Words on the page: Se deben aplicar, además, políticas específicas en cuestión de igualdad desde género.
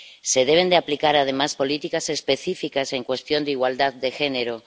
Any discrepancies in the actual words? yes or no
yes